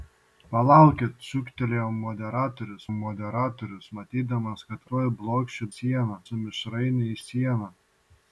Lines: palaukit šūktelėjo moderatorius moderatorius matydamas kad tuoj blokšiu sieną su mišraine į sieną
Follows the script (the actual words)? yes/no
yes